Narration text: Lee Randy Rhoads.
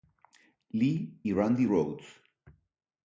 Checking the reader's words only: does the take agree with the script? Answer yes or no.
no